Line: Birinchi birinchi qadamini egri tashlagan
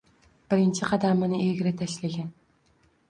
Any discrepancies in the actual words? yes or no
yes